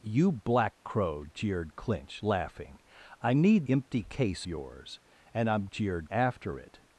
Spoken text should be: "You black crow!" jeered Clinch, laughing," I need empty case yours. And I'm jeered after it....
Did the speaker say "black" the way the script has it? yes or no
yes